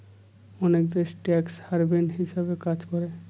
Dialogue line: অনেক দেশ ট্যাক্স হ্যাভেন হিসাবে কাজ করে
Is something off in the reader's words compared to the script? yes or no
no